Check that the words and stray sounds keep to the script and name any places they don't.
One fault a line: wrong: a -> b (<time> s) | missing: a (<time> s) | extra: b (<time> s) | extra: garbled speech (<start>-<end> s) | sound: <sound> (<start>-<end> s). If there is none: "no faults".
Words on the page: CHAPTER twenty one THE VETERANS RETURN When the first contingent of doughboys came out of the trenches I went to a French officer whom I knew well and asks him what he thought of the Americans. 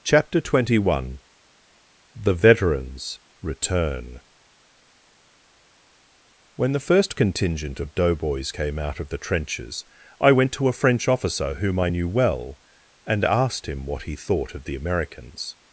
wrong: asks -> asked (13.2 s)